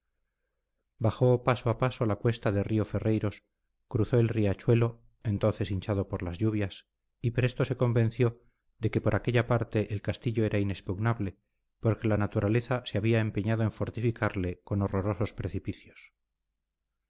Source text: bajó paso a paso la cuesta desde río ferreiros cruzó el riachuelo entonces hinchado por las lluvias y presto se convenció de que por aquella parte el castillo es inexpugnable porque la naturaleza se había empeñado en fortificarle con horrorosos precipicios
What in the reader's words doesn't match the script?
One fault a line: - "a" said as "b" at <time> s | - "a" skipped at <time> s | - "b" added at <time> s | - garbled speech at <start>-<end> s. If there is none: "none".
- "desde" said as "de" at 2.5 s
- "es" said as "era" at 10.4 s